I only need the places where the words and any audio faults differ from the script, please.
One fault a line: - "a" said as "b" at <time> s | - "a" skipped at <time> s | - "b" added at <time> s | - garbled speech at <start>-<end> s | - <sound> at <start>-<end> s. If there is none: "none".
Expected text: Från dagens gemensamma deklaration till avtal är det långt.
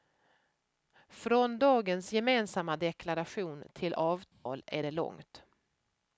- dropout at 4.3-4.5 s